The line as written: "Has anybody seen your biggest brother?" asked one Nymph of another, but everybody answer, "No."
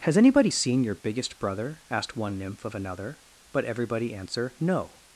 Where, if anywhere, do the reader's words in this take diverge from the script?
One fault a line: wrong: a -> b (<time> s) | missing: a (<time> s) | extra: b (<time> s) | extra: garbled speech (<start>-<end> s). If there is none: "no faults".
no faults